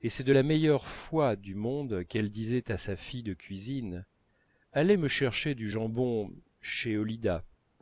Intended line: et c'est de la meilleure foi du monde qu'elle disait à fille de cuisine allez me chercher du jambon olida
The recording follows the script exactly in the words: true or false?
false